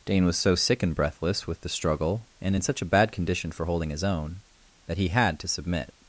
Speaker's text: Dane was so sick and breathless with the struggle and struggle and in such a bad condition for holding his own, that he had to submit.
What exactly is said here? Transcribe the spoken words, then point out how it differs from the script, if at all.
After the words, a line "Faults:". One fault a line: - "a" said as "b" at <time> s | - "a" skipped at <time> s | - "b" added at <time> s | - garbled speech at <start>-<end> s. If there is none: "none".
Dane was so sick and breathless with the struggle and in such a bad condition for holding his own, that he had to submit.
Faults:
- "struggle and" skipped at 2.5 s